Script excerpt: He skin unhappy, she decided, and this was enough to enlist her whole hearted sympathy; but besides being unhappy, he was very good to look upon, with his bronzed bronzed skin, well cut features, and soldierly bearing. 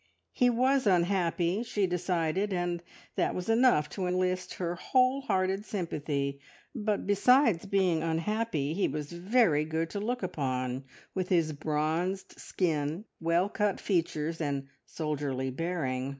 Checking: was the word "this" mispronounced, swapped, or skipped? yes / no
yes